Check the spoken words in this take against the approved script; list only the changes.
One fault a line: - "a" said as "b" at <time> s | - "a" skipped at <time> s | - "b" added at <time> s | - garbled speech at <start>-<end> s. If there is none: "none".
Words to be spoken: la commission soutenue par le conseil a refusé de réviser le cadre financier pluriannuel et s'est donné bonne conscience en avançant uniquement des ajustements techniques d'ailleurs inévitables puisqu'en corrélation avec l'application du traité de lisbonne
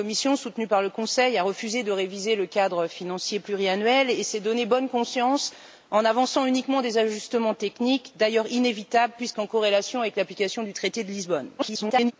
- garbled speech at 11.6-12.1 s